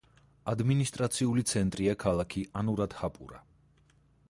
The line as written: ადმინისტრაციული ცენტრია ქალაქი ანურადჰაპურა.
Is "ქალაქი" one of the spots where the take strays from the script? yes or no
no